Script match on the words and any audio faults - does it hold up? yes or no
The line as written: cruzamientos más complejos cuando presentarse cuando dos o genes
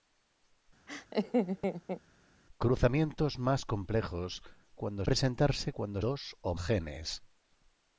no